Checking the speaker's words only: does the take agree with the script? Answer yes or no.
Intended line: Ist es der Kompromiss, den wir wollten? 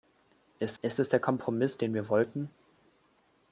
no